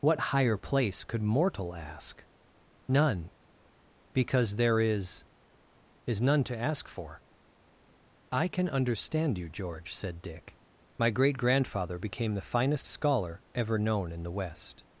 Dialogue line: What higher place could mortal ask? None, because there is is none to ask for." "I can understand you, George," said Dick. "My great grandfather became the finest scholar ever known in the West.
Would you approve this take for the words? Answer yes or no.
yes